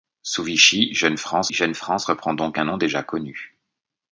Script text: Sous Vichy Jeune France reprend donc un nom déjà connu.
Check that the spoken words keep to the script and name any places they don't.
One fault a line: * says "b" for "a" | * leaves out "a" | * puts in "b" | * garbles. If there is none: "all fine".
* puts in "Jeune France"